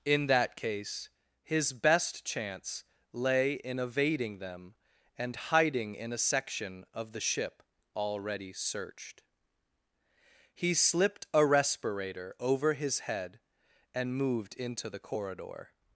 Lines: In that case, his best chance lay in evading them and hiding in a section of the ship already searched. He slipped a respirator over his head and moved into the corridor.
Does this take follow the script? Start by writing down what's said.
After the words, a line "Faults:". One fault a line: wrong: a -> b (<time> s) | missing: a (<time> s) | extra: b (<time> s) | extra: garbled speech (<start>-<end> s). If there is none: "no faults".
In that case, his best chance lay in evading them and hiding in a section of the ship already searched. He slipped a respirator over his head and moved into the corridor.
Faults:
no faults